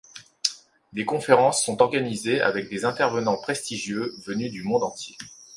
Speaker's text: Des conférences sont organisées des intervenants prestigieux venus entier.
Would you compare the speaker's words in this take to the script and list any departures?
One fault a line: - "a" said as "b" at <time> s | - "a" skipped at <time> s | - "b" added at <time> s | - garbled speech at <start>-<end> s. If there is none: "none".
- "avec" added at 2.4 s
- "du monde" added at 4.5 s